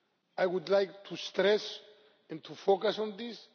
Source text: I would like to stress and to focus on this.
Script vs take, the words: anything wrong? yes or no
no